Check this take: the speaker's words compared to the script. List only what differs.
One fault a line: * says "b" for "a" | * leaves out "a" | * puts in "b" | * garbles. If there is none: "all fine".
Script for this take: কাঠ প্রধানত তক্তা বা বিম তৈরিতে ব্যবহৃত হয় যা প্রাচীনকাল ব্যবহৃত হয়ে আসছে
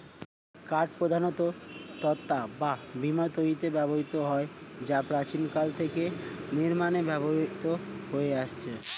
* puts in "থেকে নির্মাণে"